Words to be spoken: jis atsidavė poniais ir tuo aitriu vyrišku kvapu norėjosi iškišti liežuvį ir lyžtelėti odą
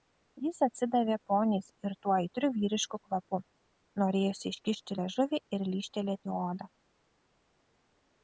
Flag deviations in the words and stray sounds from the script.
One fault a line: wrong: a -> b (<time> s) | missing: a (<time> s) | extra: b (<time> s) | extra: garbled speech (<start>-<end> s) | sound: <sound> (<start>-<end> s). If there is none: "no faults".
no faults